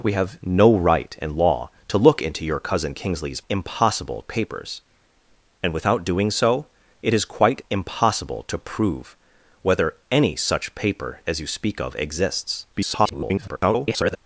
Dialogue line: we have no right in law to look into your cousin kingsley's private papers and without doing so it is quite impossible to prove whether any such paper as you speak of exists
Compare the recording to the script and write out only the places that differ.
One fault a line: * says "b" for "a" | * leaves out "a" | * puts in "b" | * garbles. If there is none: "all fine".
* says "impossible" for "private"
* garbles